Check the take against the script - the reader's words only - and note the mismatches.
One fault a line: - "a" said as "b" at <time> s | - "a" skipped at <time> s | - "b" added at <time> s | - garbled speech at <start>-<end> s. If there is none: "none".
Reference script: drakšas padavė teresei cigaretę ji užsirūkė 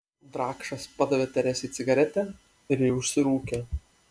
- "ir" added at 2.8 s